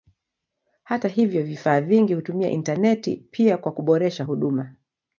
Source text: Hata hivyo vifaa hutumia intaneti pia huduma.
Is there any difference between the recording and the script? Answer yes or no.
yes